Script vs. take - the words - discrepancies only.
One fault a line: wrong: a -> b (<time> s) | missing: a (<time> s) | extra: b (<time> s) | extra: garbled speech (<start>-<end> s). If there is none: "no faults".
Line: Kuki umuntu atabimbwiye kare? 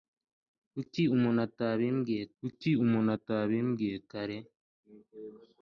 extra: kuki umuntu atabimbwiye (2.4 s)